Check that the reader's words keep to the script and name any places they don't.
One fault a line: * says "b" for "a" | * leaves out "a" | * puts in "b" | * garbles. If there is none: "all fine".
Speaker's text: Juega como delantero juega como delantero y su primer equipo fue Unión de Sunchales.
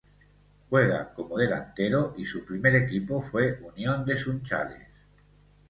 * leaves out "juega como delantero"